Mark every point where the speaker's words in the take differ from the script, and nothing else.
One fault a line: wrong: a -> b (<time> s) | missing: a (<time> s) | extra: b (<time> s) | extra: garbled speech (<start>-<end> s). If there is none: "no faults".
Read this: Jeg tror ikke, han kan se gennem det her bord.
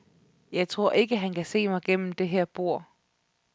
extra: mig (1.7 s)